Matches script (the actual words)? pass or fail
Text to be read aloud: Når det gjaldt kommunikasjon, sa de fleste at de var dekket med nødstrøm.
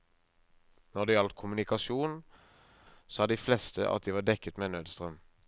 pass